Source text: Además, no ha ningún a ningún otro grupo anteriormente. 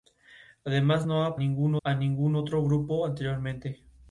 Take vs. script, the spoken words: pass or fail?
pass